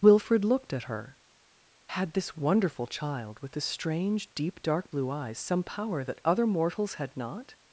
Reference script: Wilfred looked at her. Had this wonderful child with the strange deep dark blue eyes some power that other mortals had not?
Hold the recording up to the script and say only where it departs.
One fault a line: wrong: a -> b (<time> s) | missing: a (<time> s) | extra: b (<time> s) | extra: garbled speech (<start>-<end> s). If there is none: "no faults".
no faults